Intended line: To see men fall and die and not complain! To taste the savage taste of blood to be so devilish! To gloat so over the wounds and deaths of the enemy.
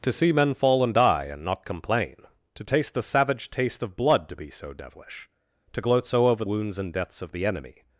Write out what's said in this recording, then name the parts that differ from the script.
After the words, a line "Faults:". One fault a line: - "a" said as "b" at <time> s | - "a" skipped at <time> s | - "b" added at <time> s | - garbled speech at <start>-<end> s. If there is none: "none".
To see men fall and die and not complain! To taste the savage taste of blood to be so devilish! To gloat so over wounds and deaths of the enemy.
Faults:
- "the" skipped at 6.4 s